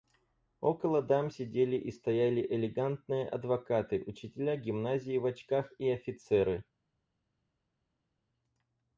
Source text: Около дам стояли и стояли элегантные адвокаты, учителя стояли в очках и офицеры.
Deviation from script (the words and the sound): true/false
true